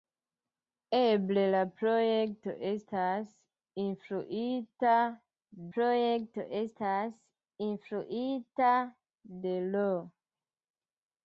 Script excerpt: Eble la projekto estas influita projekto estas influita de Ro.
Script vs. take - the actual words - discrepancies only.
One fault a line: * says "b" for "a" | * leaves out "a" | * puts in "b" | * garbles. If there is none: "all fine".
all fine